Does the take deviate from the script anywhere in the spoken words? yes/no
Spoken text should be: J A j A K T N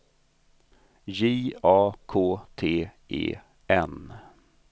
yes